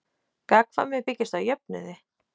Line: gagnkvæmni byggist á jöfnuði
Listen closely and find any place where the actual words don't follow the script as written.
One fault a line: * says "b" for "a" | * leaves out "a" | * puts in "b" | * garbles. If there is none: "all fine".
all fine